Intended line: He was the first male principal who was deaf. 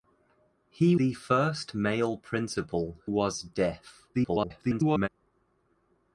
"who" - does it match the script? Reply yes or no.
no